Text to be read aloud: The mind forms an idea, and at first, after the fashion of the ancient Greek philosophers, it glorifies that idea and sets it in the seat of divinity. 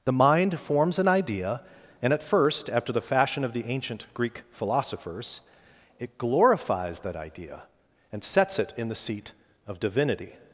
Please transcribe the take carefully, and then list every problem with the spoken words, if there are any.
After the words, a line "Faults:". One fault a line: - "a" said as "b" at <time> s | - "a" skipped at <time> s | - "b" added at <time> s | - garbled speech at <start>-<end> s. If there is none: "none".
The mind forms an idea, and at first, after the fashion of the ancient Greek philosophers, it glorifies that idea and sets it in the seat of divinity.
Faults:
none